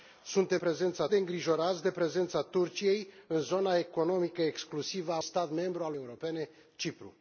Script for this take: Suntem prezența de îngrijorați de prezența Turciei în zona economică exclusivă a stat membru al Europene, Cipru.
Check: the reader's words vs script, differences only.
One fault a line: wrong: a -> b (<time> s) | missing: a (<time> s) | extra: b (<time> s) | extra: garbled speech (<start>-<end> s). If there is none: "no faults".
no faults